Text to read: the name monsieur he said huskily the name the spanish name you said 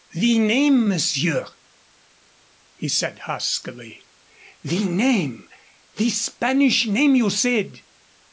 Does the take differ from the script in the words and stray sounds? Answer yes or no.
no